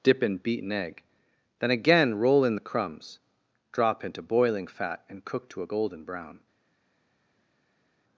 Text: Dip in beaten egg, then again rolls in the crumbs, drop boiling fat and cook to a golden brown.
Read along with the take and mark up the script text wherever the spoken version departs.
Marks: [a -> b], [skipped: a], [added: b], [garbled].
Dip in beaten egg, then again [rolls -> roll] in the crumbs, drop [added: into] boiling fat and cook to a golden brown.